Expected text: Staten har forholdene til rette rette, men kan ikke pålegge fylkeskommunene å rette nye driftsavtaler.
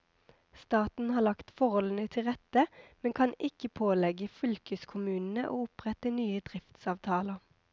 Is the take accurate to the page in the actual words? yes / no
no